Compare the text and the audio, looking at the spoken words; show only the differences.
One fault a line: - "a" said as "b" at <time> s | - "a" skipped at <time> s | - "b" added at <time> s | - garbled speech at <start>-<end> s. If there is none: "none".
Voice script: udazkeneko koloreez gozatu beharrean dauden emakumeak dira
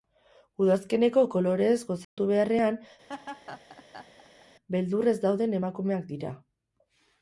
- "beldurrez" added at 4.8 s